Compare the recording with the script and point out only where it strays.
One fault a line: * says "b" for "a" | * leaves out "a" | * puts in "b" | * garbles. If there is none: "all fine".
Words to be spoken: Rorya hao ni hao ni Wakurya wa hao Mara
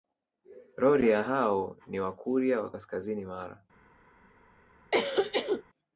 * leaves out "hao ni"
* says "kaskazini" for "hao"